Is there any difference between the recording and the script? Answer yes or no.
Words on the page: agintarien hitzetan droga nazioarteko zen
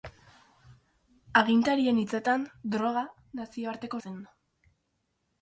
no